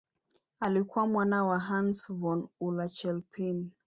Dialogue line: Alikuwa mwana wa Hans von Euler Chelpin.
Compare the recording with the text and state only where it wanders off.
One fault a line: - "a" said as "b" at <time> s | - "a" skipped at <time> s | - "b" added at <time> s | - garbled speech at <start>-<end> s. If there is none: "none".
none